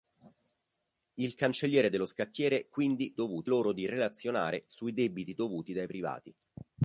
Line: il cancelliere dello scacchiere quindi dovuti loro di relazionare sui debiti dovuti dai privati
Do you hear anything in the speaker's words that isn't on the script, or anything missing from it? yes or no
no